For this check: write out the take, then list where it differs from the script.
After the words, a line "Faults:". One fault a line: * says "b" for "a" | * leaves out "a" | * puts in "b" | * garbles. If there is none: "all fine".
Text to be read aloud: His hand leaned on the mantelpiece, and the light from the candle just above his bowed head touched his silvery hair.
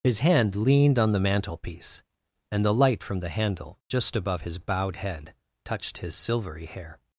His hand leaned on the mantelpiece, and the light from the handle just above his bowed head touched his silvery hair.
Faults:
* says "handle" for "candle"